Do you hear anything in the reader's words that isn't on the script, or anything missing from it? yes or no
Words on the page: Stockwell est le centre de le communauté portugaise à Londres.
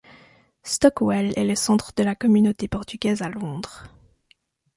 yes